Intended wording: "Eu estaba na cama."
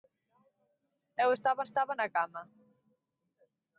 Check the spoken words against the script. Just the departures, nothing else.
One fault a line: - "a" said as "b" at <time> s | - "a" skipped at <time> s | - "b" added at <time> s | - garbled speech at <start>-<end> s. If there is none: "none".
- "estaba" added at 1.7 s